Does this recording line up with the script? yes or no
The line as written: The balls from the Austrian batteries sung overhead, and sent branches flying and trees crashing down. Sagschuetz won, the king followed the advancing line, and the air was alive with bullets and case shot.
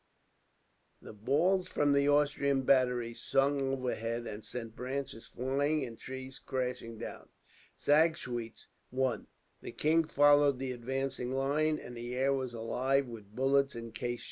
yes